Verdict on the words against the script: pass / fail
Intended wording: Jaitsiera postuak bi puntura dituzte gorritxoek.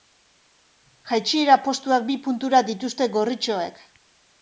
pass